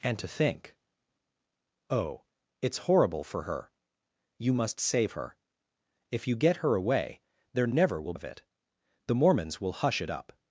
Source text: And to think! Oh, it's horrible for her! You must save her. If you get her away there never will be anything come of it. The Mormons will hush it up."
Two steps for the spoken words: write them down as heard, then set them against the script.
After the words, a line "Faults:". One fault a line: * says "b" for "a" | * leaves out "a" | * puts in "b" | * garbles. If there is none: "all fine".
And to think! Oh, it's horrible for her! You must save her. If you get her away there never will of it. The Mormons will hush it up."
Faults:
* leaves out "be anything come"